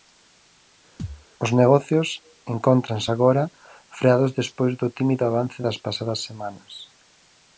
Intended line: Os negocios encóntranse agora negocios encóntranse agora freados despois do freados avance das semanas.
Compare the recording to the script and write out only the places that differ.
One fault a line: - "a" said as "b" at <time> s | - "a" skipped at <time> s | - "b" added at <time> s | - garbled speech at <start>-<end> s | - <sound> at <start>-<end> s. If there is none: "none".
- thud at 1.0-1.3 s
- "negocios encóntranse agora" skipped at 3.4 s
- "freados" said as "tímido" at 5.0 s
- "pasadas" added at 5.8 s